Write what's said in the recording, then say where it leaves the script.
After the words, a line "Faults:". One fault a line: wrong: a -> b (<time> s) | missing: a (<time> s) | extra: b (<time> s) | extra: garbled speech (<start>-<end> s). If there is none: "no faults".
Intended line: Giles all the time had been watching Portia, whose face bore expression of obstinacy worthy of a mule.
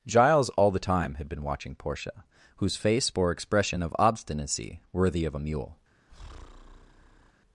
Giles all the time had been watching Portia, whose face bore expression of obstinacy worthy of a mule.
Faults:
no faults